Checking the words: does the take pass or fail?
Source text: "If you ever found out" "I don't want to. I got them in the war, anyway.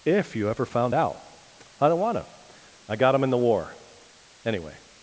pass